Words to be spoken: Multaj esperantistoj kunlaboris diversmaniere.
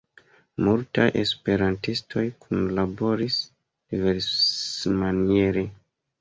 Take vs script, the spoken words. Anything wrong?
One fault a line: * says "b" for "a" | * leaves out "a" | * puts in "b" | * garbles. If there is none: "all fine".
all fine